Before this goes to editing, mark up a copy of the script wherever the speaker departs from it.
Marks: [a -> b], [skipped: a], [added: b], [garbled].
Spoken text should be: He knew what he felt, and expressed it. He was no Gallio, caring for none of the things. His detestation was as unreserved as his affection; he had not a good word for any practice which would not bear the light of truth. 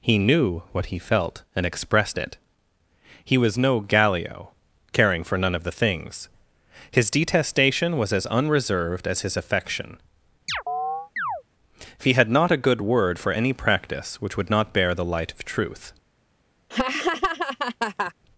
He knew what he felt, and expressed it. He was no Gallio, caring for none of the things. His detestation was as unreserved as his affection; he had not a good word for any practice which would not bear the light of truth.